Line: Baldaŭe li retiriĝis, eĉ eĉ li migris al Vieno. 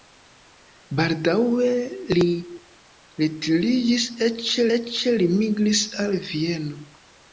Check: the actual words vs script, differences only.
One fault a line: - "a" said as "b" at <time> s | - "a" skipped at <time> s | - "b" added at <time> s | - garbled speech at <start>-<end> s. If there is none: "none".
none